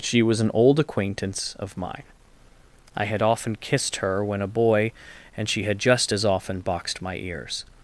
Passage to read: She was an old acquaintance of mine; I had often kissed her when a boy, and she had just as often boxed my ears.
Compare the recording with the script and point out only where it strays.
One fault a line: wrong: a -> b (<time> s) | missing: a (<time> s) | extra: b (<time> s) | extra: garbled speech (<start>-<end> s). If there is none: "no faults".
no faults